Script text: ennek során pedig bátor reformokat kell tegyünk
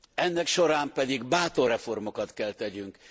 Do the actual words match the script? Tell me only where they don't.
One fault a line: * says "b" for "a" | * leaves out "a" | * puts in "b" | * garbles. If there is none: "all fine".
all fine